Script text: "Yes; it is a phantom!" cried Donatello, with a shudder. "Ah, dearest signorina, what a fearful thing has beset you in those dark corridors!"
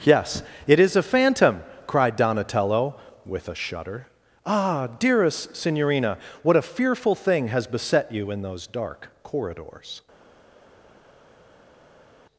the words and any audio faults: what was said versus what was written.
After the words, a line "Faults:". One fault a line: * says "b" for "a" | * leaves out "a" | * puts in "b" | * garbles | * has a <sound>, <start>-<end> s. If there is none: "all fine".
"Yes; it is a phantom!" cried Donatello, with a shudder. "Ah, dearest signorina, what a fearful thing has beset you in those dark corridors!"
Faults:
all fine